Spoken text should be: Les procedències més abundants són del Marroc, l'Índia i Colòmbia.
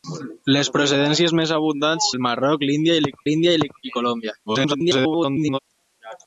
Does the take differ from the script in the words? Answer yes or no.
yes